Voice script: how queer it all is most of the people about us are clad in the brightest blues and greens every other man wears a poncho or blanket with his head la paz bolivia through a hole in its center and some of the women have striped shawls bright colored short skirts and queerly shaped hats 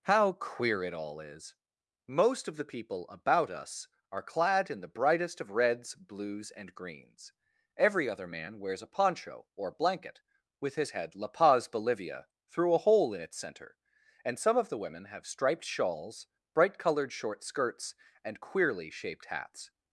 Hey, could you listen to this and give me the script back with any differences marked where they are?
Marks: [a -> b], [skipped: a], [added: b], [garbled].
how queer it all is most of the people about us are clad in the brightest [added: of reds] blues and greens every other man wears a poncho or blanket with his head la paz bolivia through a hole in its center and some of the women have striped shawls bright colored short skirts and queerly shaped hats